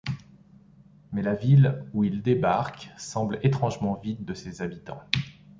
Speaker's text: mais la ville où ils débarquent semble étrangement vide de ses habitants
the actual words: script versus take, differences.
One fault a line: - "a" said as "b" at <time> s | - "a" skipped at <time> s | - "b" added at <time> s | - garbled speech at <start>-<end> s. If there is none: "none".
none